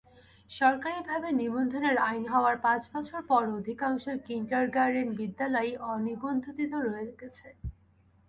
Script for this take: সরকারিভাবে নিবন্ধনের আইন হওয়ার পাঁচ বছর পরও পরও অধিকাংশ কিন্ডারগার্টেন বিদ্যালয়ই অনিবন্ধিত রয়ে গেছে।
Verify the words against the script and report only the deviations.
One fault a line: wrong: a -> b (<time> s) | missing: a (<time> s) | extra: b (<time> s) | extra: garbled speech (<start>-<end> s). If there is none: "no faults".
missing: পরও (3.6 s)